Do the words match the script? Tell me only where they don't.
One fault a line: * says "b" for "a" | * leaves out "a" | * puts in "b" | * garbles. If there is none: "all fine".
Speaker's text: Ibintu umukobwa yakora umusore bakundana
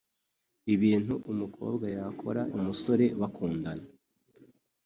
all fine